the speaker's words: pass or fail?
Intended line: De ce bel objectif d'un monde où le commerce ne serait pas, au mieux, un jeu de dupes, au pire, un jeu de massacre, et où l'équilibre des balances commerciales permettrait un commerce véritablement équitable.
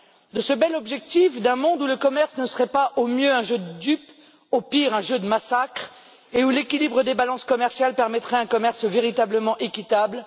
pass